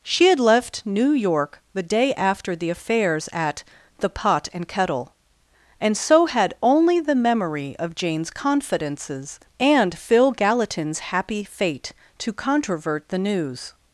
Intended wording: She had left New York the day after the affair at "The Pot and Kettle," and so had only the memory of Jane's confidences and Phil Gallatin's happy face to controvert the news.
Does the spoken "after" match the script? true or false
true